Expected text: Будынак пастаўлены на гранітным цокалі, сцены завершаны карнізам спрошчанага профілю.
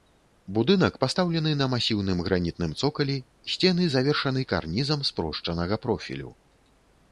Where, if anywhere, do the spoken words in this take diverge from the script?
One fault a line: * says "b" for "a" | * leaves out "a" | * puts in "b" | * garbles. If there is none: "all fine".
* puts in "масіўным"